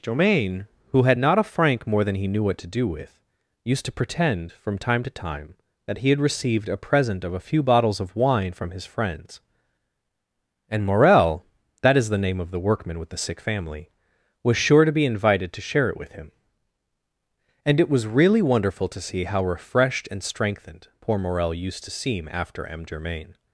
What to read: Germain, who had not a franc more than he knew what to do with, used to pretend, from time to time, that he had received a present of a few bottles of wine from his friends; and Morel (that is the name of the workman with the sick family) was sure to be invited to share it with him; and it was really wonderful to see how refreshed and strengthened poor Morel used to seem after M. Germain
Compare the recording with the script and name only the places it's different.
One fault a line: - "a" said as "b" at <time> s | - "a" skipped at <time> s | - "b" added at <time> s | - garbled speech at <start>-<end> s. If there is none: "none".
none